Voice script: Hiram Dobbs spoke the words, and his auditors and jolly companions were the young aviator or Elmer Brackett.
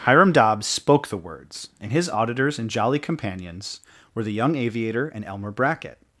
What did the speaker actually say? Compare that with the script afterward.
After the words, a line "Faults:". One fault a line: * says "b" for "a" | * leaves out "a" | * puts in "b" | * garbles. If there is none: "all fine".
Hiram Dobbs spoke the words, and his auditors and jolly companions were the young aviator and Elmer Brackett.
Faults:
* says "and" for "or"